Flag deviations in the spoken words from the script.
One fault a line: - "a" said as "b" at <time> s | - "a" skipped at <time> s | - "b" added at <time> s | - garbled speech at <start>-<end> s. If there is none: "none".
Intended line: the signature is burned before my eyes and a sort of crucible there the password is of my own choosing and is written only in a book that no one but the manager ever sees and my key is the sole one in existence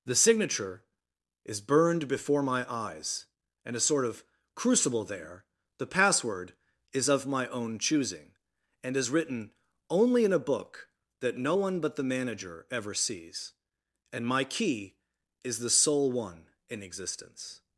none